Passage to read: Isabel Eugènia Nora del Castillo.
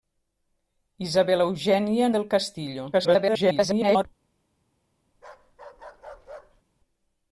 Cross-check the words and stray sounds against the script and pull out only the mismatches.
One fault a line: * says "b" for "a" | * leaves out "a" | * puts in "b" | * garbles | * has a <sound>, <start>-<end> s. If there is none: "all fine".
* leaves out "Nora"
* garbles
* has a bark, 5.1-6.6 s